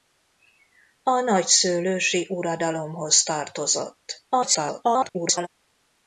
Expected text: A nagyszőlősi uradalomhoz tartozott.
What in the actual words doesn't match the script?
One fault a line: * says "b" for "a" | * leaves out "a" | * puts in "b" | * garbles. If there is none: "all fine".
* garbles